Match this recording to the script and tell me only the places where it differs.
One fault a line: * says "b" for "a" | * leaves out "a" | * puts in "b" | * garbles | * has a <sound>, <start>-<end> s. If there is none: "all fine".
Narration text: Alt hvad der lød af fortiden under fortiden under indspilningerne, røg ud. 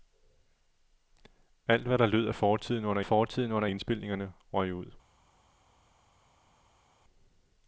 all fine